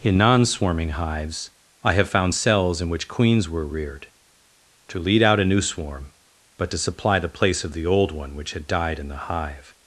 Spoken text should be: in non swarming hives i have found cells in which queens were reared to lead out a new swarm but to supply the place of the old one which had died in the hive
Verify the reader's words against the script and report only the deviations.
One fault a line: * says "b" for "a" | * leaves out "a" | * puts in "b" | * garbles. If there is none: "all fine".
all fine